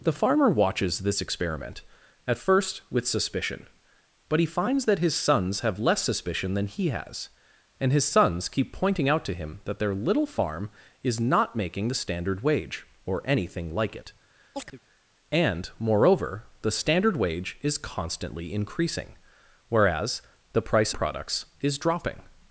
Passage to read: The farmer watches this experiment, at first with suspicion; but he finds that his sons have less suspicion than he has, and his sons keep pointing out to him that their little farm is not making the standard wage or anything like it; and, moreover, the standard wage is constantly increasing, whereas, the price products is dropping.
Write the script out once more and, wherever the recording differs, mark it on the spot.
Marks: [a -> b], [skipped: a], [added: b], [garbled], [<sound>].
The farmer watches this experiment, at first with suspicion; but he finds that his sons have less suspicion than he has, and his sons keep pointing out to him that their little farm is not making the standard wage or anything like it; [chirp] and, moreover, the standard wage is constantly increasing, whereas, the price products is dropping.